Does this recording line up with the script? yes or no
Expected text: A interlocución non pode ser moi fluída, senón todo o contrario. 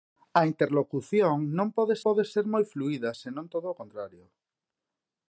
no